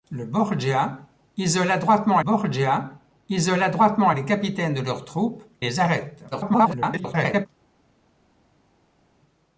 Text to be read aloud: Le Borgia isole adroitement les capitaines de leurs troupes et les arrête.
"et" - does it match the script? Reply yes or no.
no